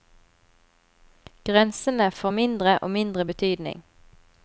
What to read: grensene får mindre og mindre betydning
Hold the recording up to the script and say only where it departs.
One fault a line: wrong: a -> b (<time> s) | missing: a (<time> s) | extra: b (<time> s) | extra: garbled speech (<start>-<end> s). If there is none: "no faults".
no faults